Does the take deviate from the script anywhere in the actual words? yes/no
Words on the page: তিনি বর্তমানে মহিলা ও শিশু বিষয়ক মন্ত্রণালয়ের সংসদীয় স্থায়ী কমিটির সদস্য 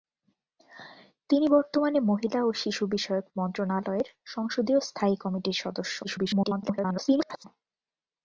yes